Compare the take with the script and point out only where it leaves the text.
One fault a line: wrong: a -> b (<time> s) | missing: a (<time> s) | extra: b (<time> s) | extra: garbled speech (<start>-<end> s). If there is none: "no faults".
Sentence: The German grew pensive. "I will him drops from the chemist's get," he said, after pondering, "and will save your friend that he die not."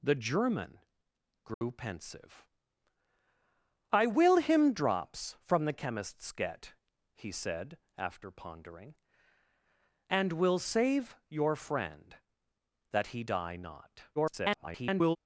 extra: garbled speech (14.2-15.2 s)